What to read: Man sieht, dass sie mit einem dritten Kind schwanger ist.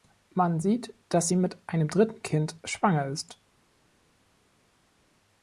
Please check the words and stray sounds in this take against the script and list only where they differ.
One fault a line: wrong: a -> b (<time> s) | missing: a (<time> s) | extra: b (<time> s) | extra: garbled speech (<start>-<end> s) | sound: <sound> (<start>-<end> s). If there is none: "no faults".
no faults